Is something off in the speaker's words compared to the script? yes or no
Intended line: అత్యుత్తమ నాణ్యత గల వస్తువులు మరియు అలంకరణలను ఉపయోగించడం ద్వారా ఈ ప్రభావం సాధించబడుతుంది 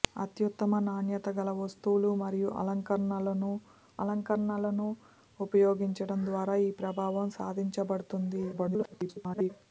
yes